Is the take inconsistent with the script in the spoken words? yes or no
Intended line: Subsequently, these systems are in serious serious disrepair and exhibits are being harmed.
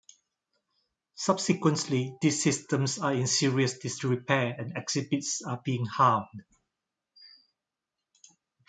yes